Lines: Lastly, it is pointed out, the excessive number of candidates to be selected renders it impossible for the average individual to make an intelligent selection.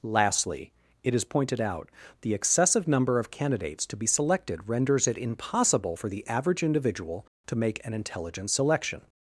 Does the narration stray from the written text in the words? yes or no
no